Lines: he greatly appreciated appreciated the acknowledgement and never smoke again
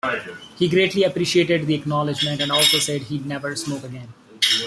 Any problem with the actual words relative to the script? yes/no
yes